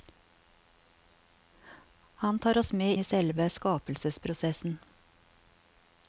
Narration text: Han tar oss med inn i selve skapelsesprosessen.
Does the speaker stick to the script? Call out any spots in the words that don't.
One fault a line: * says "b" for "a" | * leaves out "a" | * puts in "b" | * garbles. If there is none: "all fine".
* leaves out "inn"